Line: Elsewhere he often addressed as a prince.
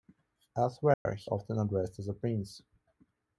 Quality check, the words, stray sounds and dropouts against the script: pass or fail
fail